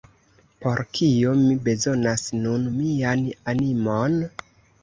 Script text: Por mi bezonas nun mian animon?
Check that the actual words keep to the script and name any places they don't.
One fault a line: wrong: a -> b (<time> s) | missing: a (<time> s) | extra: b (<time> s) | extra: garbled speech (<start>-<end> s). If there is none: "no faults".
extra: kio (1.0 s)